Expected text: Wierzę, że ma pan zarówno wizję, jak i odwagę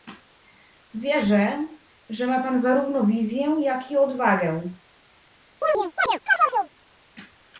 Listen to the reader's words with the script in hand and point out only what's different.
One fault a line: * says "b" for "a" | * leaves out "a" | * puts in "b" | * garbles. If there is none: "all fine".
all fine